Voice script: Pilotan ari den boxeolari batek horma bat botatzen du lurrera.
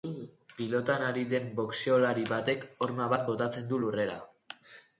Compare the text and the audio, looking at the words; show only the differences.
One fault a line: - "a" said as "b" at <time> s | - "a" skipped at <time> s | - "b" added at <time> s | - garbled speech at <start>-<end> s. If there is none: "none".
none